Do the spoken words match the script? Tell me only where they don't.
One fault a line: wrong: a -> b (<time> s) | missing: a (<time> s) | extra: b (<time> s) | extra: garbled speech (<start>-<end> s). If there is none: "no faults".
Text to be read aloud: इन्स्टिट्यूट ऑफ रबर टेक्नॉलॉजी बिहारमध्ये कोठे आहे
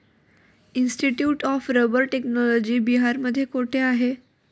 no faults